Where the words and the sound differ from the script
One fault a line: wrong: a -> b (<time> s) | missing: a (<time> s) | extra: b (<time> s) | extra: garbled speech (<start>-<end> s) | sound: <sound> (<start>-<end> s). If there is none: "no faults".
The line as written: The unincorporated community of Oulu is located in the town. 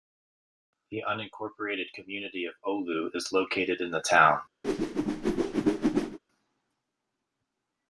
sound: whoosh (4.6-6.2 s)